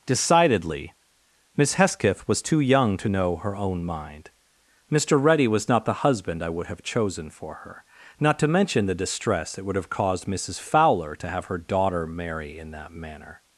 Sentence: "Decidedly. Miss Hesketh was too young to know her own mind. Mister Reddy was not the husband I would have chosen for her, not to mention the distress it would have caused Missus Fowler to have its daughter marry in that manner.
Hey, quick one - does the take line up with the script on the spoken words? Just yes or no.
no